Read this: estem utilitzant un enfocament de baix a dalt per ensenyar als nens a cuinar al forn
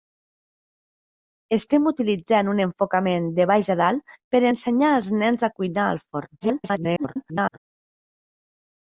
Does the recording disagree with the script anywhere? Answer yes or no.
yes